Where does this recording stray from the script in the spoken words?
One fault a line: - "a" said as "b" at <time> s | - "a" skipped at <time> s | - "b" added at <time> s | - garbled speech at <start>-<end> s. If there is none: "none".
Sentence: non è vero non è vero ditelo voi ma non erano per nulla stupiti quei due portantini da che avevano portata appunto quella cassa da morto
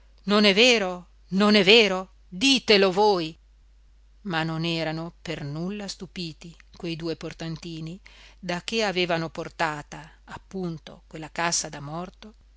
none